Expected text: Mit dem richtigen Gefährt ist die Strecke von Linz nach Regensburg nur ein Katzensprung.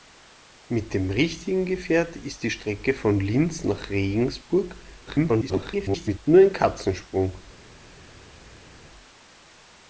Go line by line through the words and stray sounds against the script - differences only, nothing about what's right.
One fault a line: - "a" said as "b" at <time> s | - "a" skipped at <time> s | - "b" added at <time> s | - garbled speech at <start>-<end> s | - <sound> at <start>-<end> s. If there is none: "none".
- garbled speech at 5.1-6.2 s